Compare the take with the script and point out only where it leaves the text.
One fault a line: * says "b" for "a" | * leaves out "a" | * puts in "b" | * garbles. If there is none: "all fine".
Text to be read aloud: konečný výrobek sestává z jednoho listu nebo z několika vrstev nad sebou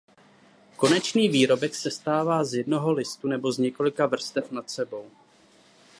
all fine